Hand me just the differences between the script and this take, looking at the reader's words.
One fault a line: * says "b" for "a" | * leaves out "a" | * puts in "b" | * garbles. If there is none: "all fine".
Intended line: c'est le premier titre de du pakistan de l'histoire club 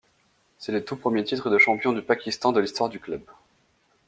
* puts in "tout"
* puts in "champion"
* puts in "du"